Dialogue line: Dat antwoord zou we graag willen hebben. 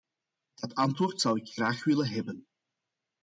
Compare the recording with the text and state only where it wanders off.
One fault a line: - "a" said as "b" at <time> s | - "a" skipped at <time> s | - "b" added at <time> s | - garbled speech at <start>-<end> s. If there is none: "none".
- "we" said as "ik" at 1.4 s